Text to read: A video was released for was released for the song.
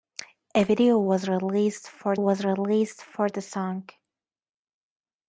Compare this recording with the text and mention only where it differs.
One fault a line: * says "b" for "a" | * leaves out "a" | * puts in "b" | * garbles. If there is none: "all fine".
all fine